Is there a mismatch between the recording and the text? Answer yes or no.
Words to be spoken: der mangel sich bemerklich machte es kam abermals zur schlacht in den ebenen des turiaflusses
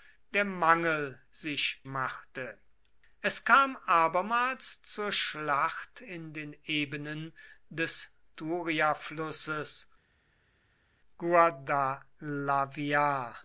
yes